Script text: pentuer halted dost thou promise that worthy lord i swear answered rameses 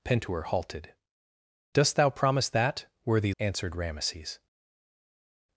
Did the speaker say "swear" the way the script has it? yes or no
no